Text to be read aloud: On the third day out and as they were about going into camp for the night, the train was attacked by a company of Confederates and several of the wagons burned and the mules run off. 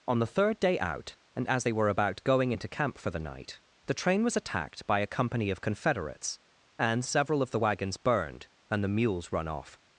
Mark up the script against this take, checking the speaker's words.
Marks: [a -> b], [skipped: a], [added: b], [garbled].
On the third day out and as they were about going into camp for the night, the train was attacked by a company of Confederates and several of the wagons burned and the mules run off.